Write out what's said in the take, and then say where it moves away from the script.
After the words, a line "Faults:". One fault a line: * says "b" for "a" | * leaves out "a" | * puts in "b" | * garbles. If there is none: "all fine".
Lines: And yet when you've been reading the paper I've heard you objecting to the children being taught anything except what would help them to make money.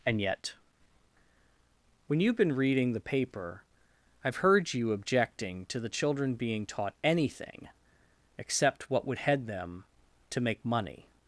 And yet when you've been reading the paper I've heard you objecting to the children being taught anything except what would head them to make money.
Faults:
* says "head" for "help"